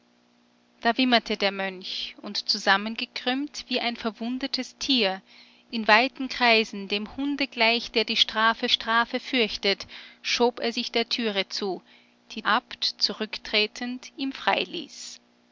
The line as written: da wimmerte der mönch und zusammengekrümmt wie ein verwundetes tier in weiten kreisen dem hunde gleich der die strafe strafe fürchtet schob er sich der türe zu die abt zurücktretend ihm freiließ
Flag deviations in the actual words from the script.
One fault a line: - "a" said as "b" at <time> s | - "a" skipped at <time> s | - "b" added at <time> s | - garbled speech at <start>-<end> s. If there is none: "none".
none